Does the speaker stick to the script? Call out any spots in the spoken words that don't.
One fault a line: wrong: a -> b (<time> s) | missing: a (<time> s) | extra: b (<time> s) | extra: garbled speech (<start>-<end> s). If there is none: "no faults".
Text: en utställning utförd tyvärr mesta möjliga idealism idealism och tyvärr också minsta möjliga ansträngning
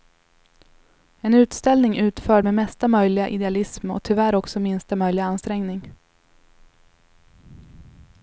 wrong: tyvärr -> med (2.4 s)
missing: idealism (3.9 s)